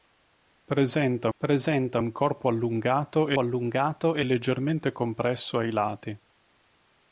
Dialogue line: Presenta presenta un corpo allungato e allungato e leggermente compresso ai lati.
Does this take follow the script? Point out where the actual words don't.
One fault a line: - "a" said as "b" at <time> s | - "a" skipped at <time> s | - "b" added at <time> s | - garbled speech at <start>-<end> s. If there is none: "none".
none